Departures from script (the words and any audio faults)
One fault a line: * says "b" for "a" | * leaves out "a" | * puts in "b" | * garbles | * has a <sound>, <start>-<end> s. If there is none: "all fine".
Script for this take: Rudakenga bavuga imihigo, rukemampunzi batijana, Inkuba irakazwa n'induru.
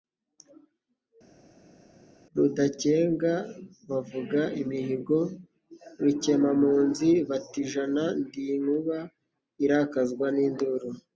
* puts in "Ndi"